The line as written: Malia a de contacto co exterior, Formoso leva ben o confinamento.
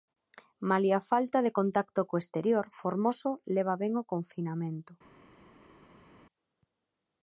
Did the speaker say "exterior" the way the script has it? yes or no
yes